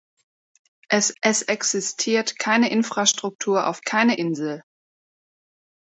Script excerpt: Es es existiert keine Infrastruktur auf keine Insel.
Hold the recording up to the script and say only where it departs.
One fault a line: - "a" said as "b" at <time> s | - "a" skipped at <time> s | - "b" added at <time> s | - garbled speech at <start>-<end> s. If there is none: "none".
none